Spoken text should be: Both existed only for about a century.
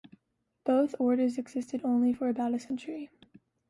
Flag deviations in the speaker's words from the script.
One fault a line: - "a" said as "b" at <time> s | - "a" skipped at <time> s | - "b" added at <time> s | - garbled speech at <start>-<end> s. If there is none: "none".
- "orders" added at 1.0 s